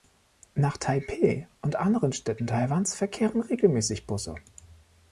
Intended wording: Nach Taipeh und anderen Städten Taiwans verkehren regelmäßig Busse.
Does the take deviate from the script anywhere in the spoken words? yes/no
no